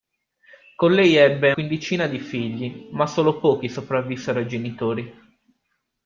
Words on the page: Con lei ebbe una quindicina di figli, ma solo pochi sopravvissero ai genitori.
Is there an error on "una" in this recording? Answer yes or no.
yes